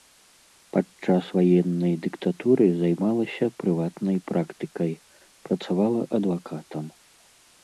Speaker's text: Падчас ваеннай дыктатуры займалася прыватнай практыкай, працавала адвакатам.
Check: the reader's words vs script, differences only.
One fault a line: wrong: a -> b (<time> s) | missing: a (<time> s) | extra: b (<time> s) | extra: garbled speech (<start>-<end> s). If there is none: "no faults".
no faults